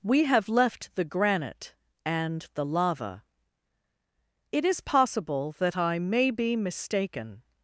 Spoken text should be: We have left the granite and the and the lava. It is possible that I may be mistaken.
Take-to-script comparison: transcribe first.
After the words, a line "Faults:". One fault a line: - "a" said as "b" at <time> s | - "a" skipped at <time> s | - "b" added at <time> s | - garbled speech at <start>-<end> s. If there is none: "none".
We have left the granite and the lava. It is possible that I may be mistaken.
Faults:
- "and the" skipped at 2.6 s